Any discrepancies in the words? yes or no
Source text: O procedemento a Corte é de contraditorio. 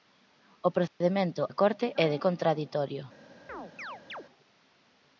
no